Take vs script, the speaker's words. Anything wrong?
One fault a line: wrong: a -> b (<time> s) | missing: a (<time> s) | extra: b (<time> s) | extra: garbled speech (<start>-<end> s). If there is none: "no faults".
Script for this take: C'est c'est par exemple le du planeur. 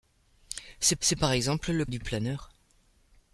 no faults